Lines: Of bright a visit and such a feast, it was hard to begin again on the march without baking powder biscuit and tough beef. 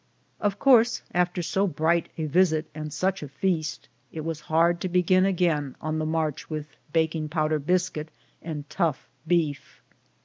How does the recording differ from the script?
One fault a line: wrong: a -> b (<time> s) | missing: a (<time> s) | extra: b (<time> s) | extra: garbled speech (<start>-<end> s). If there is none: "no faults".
extra: course after so (0.6 s)
wrong: without -> with (6.5 s)